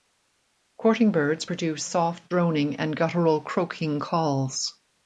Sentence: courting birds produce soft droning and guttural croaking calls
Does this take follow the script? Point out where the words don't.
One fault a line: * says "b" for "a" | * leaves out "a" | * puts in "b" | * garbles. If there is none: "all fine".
all fine